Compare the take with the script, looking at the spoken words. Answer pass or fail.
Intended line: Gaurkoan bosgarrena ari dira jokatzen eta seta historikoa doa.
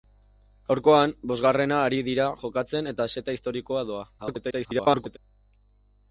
fail